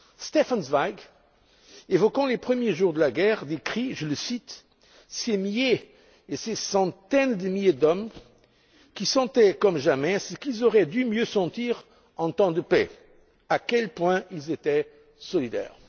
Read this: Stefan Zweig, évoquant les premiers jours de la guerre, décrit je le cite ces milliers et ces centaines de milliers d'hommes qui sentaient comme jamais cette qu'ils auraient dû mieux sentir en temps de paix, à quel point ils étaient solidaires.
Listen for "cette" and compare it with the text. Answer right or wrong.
wrong